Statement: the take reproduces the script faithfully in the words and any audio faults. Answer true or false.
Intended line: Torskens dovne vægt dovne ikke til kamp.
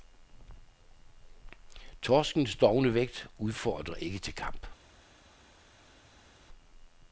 false